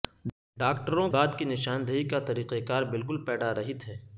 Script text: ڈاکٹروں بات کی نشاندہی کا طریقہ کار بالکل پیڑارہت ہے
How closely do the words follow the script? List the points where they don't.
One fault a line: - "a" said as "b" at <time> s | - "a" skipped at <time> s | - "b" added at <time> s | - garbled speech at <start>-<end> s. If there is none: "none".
none